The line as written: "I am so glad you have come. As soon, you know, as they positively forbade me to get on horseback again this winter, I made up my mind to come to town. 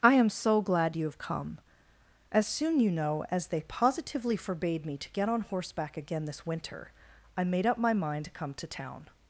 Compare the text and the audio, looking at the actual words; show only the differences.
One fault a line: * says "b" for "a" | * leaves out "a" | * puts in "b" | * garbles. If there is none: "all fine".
all fine